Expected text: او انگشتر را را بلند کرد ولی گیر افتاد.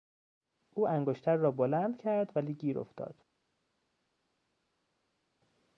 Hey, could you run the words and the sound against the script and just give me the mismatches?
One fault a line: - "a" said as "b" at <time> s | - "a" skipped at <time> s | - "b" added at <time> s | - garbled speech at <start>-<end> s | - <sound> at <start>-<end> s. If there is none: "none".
- "را" skipped at 1.5 s